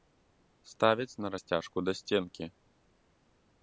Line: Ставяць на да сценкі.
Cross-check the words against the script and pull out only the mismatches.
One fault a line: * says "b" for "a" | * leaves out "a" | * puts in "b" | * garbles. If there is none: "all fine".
* puts in "расцяжку"